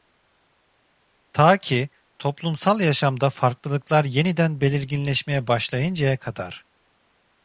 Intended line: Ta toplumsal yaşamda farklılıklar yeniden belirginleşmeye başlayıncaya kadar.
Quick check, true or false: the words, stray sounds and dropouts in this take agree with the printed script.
false